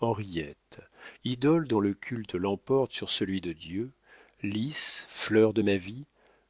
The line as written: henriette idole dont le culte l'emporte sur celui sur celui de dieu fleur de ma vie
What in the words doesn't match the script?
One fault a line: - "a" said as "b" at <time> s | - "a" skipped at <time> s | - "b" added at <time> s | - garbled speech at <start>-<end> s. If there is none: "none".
- "sur celui" skipped at 3.4 s
- "lys" added at 4.4 s